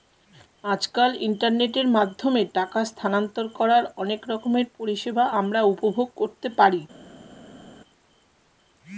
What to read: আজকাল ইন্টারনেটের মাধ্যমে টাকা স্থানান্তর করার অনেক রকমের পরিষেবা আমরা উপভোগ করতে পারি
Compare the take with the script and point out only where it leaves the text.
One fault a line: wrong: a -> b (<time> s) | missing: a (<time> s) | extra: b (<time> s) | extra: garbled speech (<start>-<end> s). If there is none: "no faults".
no faults